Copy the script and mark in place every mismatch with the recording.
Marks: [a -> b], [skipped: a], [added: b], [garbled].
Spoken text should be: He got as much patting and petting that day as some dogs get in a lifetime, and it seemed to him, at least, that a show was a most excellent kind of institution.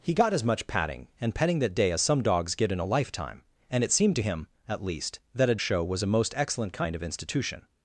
He got as much patting and petting that day as some dogs get in a lifetime, and it seemed to him, at least, that a show was a most excellent kind of institution.